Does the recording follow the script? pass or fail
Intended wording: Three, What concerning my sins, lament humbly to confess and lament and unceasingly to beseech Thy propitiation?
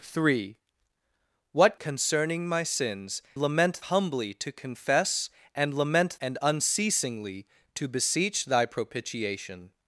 pass